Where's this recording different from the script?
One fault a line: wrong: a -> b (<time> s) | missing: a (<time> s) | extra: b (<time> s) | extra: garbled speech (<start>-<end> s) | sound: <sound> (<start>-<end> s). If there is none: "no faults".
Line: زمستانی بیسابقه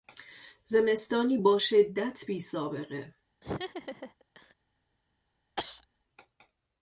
extra: با شدت (1.4 s)
sound: laugh (3.4-4.5 s)
sound: cough (5.6-5.9 s)